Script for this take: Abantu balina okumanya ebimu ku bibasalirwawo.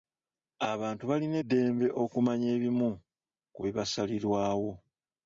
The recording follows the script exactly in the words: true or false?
false